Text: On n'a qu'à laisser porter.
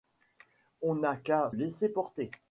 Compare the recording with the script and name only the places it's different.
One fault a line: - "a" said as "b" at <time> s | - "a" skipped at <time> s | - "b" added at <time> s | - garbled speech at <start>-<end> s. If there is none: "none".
none